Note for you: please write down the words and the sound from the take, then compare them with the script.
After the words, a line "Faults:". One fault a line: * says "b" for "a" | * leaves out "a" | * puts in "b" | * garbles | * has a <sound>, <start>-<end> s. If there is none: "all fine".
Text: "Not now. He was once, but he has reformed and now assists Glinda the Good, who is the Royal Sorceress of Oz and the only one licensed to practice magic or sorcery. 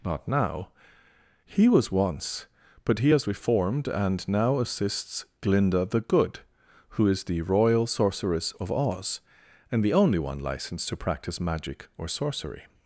"Not now. He was once, but he has reformed and now assists Glinda the Good, who is the Royal Sorceress of Oz and the only one licensed to practice magic or sorcery.
Faults:
all fine